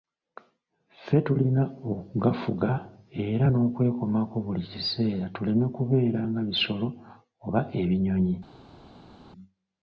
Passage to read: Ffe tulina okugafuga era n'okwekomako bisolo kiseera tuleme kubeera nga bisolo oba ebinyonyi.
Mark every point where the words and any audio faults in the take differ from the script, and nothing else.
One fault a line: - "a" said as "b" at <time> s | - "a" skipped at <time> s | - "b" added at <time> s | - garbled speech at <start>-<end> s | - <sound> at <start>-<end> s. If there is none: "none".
- "bisolo" said as "buli" at 4.4 s